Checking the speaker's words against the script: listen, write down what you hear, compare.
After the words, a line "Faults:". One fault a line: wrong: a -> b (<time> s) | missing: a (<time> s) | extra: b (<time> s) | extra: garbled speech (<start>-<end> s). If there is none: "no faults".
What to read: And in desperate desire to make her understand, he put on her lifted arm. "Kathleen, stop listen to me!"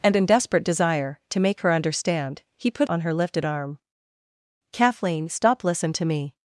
And in desperate desire to make her understand, he put on her lifted arm. "Kathleen, stop listen to me!"
Faults:
no faults